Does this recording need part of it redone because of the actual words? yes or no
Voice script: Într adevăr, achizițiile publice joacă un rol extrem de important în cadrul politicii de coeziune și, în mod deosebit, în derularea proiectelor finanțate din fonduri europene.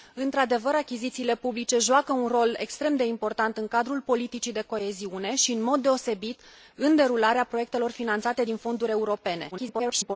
yes